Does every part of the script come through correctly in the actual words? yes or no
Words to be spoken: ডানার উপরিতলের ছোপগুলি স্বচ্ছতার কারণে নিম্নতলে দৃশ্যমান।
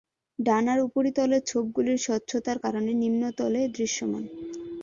yes